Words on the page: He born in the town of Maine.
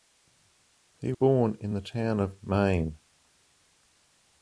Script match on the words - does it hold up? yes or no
yes